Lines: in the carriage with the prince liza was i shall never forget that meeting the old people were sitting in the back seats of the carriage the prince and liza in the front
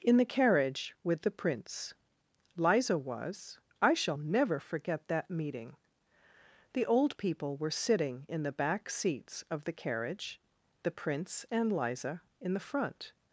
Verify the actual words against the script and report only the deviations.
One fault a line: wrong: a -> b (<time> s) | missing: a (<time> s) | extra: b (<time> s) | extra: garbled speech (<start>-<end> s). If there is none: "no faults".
no faults